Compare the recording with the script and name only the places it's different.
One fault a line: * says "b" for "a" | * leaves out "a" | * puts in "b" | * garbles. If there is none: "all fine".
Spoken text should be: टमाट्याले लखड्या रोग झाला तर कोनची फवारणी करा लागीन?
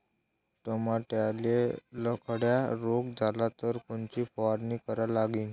all fine